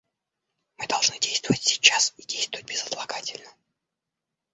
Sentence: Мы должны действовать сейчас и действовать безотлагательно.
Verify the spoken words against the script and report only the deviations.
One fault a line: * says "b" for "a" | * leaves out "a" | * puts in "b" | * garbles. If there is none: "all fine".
all fine